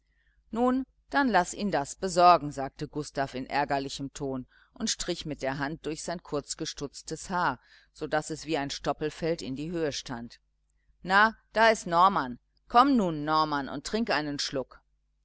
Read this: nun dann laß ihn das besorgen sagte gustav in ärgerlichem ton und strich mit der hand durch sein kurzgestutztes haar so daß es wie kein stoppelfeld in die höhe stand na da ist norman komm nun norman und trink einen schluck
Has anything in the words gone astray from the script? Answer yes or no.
yes